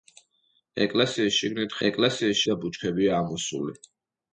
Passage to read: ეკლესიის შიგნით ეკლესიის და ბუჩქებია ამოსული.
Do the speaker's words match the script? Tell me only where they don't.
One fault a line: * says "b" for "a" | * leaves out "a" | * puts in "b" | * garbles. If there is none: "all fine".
all fine